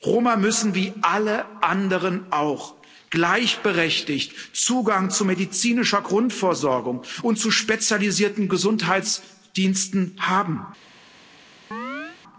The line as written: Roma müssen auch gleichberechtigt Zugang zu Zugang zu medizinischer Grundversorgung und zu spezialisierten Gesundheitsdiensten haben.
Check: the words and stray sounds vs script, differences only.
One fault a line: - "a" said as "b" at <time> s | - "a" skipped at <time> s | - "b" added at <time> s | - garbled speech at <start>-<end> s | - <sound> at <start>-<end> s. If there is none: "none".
- "wie alle anderen" added at 0.8 s
- "Zugang zu" skipped at 5.2 s
- chirp at 11.7-12.2 s